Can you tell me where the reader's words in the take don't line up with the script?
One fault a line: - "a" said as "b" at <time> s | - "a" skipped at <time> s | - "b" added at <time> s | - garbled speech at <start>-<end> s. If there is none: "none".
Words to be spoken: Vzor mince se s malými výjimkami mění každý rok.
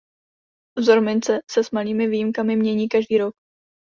none